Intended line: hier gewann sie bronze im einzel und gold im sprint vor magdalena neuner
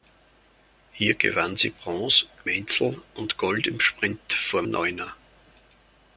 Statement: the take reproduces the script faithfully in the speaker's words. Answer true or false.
false